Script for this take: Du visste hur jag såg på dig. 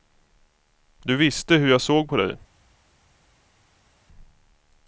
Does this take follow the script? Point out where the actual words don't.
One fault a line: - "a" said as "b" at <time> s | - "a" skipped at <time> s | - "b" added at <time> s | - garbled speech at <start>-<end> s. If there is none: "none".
none